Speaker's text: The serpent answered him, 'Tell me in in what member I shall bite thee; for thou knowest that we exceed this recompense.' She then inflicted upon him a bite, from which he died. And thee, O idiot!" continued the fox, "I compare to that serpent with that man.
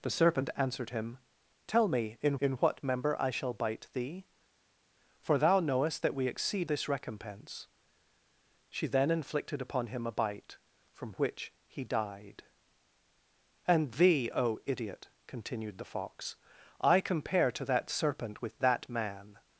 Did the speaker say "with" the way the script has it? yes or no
yes